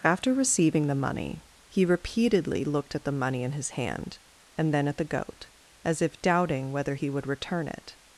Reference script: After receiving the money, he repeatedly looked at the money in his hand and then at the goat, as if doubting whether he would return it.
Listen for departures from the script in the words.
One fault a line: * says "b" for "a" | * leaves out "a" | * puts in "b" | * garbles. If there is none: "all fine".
all fine